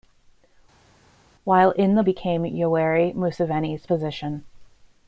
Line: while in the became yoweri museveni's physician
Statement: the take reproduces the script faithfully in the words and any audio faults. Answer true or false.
true